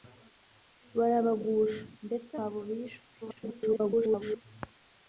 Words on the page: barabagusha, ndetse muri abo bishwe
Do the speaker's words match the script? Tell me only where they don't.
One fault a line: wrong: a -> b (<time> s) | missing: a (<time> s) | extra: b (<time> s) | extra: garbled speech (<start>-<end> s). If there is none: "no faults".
missing: muri (2.3 s)
extra: garbled speech (3.2-4.4 s)